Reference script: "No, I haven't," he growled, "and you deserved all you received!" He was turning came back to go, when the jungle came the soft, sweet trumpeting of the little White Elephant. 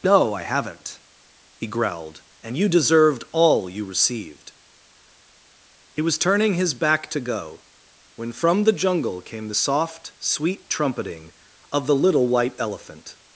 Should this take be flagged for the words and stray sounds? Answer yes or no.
yes